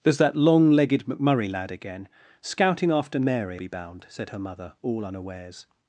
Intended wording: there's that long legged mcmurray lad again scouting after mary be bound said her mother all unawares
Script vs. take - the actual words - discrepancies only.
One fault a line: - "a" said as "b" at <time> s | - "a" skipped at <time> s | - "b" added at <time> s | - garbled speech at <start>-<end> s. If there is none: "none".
none